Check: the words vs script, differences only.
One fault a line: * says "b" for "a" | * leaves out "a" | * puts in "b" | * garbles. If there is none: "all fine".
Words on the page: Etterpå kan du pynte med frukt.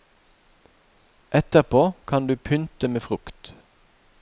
all fine